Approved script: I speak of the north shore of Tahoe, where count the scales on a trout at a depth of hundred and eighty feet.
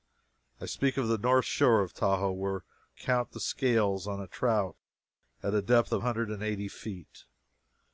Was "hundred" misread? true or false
false